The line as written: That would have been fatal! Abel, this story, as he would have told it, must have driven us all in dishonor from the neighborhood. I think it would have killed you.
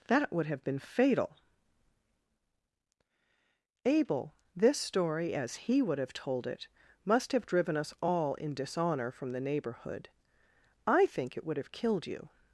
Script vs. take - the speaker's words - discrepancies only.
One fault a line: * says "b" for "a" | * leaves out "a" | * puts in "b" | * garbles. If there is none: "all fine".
all fine